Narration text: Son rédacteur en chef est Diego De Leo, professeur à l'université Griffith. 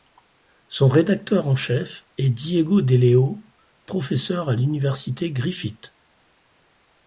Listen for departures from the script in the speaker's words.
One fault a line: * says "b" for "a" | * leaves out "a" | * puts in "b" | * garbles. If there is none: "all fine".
all fine